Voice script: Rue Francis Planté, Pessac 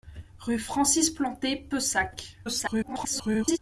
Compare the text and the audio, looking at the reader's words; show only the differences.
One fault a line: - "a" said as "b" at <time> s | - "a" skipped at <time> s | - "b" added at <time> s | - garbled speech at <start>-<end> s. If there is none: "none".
- garbled speech at 2.4-3.6 s